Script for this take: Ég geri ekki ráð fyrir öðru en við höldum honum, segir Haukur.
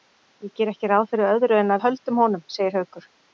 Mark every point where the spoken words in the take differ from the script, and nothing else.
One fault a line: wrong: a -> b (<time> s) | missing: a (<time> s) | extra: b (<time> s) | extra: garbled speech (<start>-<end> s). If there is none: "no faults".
no faults